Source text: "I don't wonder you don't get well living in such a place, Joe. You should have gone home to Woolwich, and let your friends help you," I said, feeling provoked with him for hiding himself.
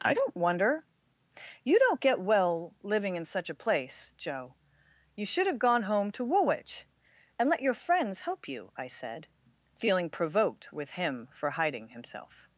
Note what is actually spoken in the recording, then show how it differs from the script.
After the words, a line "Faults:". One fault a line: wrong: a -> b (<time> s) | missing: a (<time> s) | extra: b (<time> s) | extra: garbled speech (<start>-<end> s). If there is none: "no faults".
"I don't wonder you don't get well living in such a place, Joe. You should have gone home to Woolwich, and let your friends help you," I said, feeling provoked with him for hiding himself.
Faults:
no faults